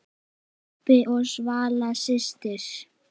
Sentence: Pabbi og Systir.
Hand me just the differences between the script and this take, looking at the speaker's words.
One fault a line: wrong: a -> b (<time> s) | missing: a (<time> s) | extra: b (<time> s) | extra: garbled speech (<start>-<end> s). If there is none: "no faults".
extra: Svala (1.3 s)